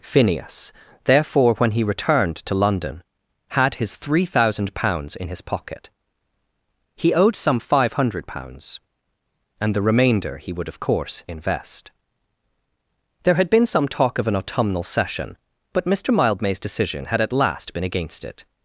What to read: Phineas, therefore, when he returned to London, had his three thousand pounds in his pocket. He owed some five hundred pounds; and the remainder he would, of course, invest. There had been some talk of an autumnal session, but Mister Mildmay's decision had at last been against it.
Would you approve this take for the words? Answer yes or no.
yes